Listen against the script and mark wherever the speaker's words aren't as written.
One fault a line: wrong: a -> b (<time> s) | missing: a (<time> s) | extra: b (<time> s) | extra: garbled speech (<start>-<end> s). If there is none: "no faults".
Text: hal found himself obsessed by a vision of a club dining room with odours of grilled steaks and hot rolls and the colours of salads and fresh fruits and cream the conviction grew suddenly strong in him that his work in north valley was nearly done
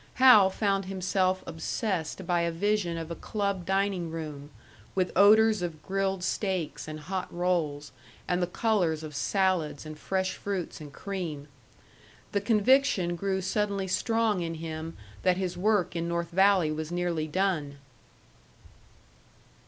no faults